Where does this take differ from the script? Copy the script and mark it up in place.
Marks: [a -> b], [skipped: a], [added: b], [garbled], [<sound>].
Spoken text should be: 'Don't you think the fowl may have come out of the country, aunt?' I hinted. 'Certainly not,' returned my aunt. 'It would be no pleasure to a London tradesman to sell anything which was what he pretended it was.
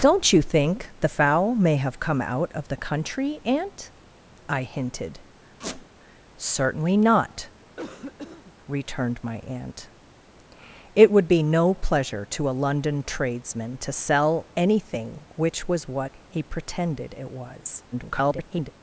'Don't you think the fowl may have come out of the country, aunt?' I hinted. [squeak] 'Certainly not,' [cough] returned my aunt. 'It would be no pleasure to a London tradesman to sell anything which was what he pretended it was. [garbled]